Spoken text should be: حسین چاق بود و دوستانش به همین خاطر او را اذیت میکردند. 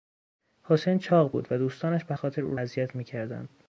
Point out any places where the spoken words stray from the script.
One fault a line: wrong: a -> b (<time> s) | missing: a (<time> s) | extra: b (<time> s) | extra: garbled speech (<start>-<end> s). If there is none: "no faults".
missing: همین (2.1 s)
missing: را (2.6 s)